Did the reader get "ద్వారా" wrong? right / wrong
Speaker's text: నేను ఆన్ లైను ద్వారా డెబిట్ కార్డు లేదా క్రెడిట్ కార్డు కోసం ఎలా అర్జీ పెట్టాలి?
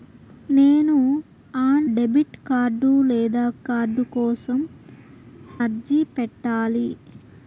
wrong